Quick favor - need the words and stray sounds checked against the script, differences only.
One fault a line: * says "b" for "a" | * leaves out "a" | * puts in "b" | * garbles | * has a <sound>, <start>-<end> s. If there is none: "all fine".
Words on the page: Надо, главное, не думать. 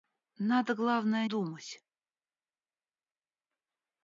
* leaves out "не"